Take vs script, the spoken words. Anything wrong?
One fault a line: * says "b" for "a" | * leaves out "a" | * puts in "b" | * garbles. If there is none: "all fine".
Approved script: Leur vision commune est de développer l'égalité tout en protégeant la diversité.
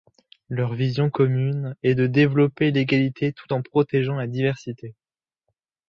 all fine